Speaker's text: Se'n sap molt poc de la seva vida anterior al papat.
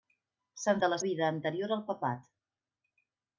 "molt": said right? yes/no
no